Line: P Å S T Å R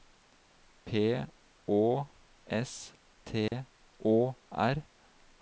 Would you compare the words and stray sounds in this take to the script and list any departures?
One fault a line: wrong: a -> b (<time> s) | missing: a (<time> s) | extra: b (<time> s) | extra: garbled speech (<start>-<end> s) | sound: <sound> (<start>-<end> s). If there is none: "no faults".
sound: dropout (3.5-3.5 s)